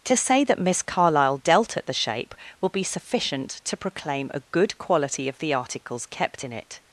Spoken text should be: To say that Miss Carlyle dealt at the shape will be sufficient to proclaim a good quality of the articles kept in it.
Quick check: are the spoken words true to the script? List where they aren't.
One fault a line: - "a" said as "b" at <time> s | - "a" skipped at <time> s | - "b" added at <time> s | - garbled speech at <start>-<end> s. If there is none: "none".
none